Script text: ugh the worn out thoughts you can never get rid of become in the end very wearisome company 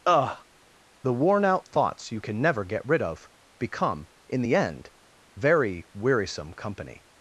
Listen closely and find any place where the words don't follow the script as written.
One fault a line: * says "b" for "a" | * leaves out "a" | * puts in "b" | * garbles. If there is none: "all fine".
all fine